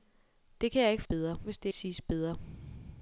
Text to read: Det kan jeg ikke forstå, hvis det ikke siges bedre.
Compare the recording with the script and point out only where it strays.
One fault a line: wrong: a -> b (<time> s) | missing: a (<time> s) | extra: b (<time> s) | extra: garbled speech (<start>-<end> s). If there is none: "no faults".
wrong: forstå -> bedre (1.0 s)
missing: ikke (1.7 s)